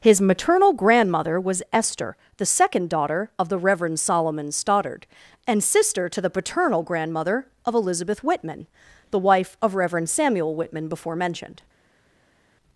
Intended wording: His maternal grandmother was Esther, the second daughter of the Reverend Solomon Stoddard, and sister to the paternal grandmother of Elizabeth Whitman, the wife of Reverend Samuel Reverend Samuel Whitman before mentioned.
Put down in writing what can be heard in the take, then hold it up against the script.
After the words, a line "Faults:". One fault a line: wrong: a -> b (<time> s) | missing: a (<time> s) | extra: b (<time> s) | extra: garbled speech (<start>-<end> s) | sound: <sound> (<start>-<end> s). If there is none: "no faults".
His maternal grandmother was Esther, the second daughter of the Reverend Solomon Stoddard, and sister to the paternal grandmother of Elizabeth Whitman, the wife of Reverend Samuel Whitman before mentioned.
Faults:
missing: Reverend Samuel (10.5 s)